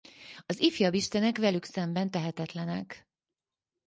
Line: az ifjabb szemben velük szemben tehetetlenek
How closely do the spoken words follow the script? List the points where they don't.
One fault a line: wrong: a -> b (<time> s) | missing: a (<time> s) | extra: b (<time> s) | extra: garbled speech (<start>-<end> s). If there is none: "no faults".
wrong: szemben -> istenek (0.9 s)